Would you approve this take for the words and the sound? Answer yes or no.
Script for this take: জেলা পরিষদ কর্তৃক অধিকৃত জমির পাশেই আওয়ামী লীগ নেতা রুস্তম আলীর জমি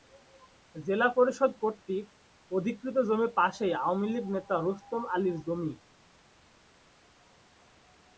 yes